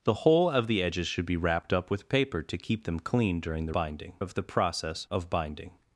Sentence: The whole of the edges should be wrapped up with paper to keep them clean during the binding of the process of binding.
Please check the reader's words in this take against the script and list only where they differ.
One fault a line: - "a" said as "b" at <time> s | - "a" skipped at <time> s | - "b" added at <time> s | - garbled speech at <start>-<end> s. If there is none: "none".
none